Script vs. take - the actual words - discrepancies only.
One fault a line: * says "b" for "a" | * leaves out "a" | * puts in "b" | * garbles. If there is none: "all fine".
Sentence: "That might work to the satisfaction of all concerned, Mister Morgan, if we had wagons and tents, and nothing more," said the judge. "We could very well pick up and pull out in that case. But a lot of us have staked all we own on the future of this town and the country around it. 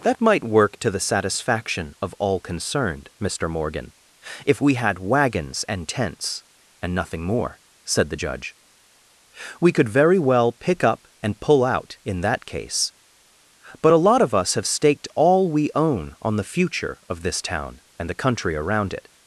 all fine